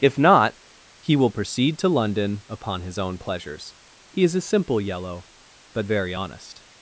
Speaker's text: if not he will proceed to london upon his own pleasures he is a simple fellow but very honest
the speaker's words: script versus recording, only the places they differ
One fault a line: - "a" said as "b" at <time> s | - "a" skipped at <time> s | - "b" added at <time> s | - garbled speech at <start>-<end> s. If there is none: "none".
- "fellow" said as "yellow" at 4.8 s